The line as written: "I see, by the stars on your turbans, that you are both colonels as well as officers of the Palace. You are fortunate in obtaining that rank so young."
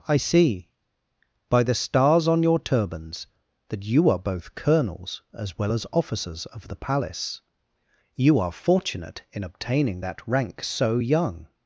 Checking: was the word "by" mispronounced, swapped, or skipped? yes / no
no